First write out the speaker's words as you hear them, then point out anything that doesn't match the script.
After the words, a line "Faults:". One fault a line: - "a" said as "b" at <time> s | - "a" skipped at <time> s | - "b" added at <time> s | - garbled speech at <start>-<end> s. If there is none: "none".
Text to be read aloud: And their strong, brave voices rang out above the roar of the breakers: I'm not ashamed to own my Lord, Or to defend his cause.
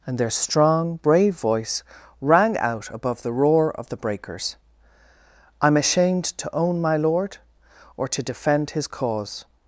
And their strong, brave voice rang out above the roar of the breakers: I'm ashamed to own my Lord, Or to defend his cause.
Faults:
- "voices" said as "voice" at 1.4 s
- "not" skipped at 5.8 s